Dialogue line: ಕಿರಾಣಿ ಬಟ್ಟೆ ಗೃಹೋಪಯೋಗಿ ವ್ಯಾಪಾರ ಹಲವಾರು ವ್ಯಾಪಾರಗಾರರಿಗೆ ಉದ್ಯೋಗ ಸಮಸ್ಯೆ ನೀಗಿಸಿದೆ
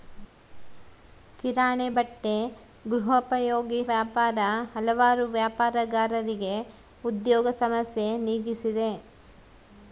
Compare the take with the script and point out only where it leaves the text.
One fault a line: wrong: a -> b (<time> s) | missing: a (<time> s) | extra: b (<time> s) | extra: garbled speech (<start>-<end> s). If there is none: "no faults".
no faults